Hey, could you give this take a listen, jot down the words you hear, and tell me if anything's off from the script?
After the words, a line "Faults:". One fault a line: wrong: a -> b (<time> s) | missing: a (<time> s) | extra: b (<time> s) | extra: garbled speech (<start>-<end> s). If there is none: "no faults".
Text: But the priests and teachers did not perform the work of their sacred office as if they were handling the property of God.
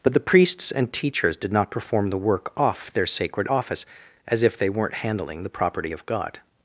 But the priests and teachers did not perform the work off their sacred office as if they weren't handling the property of God.
Faults:
wrong: of -> off (2.6 s)
wrong: were -> weren't (4.7 s)